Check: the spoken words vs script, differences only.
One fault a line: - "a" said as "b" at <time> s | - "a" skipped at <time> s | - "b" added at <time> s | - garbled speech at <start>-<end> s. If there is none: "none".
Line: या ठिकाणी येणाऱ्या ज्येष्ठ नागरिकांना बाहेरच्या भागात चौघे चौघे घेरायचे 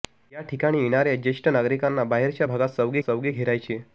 none